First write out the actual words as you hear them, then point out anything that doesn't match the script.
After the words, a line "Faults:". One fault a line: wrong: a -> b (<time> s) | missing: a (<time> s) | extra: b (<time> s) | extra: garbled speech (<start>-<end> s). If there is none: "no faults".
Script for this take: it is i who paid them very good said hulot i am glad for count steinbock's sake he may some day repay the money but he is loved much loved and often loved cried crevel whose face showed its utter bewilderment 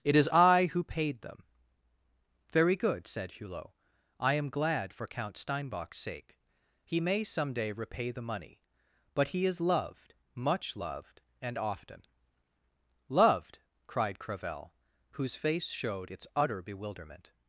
it is i who paid them very good said hulot i am glad for count steinbock's sake he may some day repay the money but he is loved much loved and often loved cried crevel whose face showed its utter bewilderment
Faults:
no faults